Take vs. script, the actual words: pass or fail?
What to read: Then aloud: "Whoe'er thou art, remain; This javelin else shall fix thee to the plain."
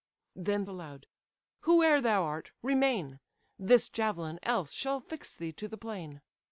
pass